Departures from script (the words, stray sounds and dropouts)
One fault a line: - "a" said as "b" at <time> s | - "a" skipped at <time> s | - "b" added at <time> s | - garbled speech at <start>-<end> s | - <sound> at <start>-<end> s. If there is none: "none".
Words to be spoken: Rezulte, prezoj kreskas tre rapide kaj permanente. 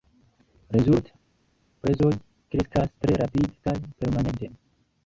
none